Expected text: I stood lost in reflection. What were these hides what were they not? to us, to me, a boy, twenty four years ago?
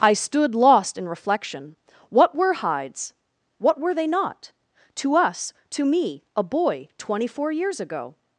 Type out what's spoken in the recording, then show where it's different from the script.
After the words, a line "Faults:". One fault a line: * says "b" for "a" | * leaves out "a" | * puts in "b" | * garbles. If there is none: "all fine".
I stood lost in reflection. What were hides what were they not? to us, to me, a boy, twenty four years ago?
Faults:
* leaves out "these"